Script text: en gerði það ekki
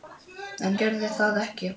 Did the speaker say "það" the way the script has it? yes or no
yes